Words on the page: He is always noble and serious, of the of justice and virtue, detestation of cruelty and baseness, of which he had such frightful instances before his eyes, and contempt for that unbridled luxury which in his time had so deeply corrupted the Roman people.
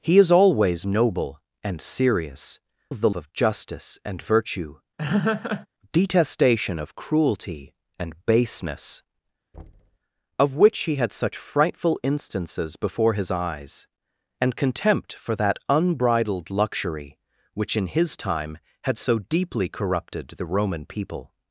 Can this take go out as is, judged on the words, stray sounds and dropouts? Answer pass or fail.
fail